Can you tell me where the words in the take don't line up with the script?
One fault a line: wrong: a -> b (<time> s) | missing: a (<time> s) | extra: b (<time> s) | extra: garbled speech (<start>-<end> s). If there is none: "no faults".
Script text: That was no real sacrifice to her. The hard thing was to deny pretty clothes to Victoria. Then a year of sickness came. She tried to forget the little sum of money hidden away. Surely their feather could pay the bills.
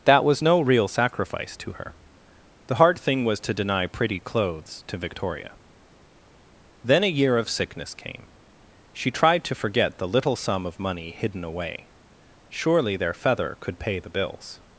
no faults